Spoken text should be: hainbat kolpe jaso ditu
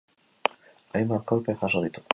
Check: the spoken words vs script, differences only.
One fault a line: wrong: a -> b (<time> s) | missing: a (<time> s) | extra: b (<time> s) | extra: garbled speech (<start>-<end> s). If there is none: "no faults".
no faults